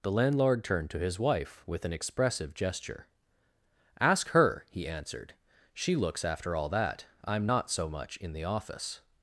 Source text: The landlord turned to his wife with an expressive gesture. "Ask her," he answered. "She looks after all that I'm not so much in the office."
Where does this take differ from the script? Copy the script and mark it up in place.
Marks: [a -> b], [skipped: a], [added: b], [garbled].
The landlord turned to his wife with an expressive gesture. "Ask her," he answered. "She looks after all that I'm not so much in the office."